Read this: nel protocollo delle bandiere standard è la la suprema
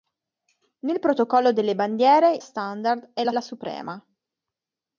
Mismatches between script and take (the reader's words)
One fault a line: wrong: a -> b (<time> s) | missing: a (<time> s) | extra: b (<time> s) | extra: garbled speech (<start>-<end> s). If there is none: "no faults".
no faults